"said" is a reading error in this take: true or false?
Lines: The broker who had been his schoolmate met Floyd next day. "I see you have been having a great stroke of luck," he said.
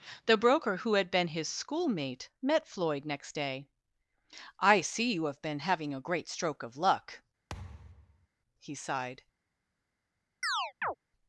true